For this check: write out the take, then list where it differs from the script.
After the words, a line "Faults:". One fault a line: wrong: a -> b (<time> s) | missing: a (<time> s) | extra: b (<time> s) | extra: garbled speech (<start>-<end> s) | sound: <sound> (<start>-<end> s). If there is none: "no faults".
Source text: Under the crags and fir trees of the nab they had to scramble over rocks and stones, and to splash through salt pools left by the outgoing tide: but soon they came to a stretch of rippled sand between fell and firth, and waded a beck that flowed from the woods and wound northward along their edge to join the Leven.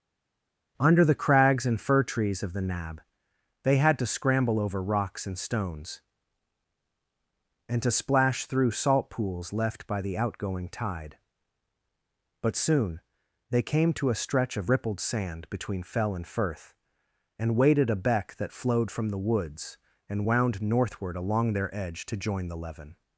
Under the crags and fir trees of the nab they had to scramble over rocks and stones, and to splash through salt pools left by the outgoing tide: but soon they came to a stretch of rippled sand between fell and firth, and waded a beck that flowed from the woods and wound northward along their edge to join the Leven.
Faults:
no faults